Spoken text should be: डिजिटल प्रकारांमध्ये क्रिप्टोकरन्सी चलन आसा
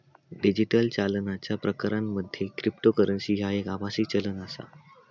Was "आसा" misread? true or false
false